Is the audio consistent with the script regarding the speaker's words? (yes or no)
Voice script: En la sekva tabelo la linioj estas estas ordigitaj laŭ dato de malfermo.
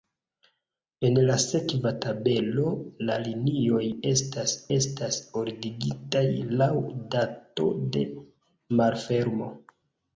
yes